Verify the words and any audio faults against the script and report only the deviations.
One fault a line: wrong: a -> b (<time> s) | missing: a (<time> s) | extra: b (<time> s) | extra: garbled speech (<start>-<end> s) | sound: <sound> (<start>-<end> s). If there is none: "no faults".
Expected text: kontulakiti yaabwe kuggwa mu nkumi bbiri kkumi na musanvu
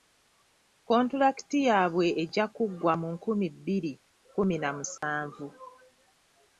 extra: ejja (2.2 s)
sound: dropout (5.0-5.0 s)